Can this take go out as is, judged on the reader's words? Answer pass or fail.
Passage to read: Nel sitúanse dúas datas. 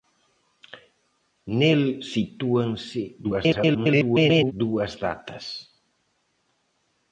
fail